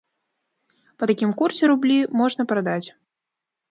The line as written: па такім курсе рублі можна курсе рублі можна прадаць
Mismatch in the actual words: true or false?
true